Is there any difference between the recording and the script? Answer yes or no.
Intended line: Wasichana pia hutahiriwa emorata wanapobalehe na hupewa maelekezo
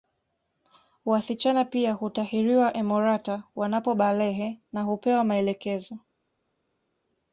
no